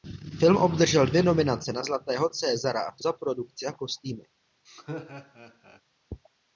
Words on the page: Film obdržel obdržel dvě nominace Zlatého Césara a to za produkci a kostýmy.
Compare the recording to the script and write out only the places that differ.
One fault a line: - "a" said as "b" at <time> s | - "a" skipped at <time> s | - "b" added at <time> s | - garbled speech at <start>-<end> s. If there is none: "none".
- "obdržel" skipped at 1.1 s
- "na" added at 1.7 s